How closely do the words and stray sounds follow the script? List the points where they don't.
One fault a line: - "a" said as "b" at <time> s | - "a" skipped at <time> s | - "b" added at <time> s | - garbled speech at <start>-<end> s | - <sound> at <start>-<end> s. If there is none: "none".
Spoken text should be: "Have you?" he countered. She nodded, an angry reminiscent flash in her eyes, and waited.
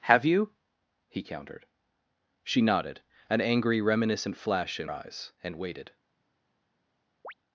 - "her" skipped at 4.9 s
- chirp at 7.2-7.3 s